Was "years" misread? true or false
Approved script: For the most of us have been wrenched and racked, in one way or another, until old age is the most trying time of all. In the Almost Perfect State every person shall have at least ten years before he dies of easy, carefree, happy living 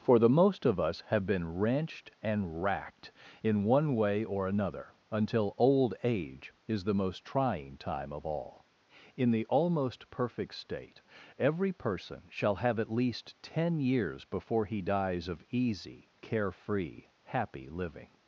false